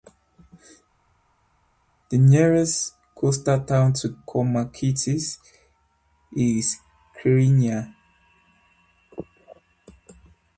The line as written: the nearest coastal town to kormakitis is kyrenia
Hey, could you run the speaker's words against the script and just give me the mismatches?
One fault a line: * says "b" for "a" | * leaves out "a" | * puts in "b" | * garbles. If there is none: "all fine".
all fine